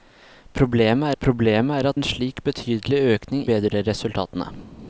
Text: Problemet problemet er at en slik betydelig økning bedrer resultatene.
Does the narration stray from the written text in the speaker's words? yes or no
no